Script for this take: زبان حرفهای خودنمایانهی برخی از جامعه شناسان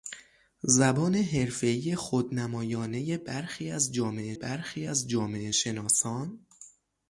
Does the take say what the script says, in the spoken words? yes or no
no